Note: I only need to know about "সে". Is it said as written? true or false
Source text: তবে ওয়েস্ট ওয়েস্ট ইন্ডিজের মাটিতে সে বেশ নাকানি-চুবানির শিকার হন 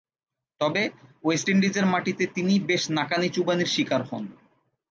false